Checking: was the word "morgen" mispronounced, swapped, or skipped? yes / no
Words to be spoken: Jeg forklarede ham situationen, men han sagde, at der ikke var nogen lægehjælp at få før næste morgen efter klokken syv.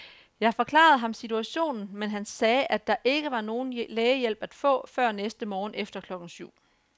no